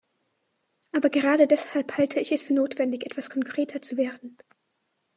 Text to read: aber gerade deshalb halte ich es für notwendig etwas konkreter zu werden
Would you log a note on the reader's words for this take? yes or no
no